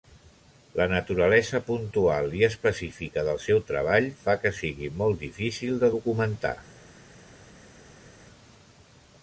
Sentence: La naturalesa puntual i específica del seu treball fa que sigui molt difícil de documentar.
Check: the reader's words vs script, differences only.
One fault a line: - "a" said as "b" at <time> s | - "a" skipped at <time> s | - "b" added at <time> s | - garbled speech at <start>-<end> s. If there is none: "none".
none